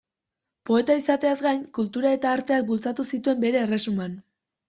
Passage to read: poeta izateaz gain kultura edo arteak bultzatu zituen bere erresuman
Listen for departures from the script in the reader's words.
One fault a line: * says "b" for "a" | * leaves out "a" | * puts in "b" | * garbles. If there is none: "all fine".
* says "eta" for "edo"